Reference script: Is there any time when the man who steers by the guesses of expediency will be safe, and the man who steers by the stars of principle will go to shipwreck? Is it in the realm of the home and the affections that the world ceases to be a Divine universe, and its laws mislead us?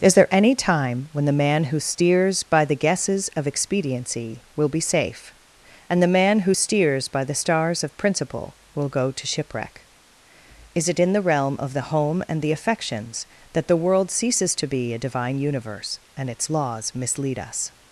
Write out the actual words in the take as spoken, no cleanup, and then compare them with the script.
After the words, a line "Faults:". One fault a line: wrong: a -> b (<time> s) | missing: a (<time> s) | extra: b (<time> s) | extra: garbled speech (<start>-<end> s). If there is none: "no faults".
Is there any time when the man who steers by the guesses of expediency will be safe, and the man who steers by the stars of principle will go to shipwreck? Is it in the realm of the home and the affections that the world ceases to be a Divine universe, and its laws mislead us?
Faults:
no faults